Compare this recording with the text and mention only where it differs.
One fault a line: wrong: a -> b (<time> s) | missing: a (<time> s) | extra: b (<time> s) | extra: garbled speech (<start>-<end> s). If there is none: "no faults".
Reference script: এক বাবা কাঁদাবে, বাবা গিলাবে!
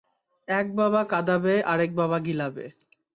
extra: আরেক (1.6 s)